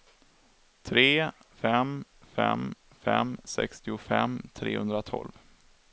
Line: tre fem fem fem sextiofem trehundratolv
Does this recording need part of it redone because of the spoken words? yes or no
no